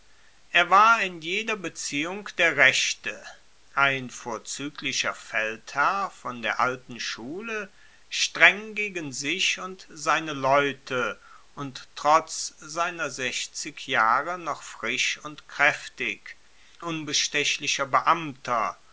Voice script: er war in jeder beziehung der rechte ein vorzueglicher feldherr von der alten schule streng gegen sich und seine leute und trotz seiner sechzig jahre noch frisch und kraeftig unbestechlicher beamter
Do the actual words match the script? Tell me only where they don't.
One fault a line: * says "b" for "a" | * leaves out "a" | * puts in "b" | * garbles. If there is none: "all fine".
all fine